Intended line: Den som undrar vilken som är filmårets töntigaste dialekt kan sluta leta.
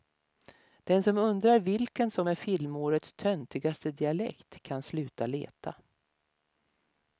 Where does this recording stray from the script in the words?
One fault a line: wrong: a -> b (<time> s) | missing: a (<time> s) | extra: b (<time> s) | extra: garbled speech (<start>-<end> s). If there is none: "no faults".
no faults